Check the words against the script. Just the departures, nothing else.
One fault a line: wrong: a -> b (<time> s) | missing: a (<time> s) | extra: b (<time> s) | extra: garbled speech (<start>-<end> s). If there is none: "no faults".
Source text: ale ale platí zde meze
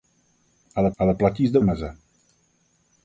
no faults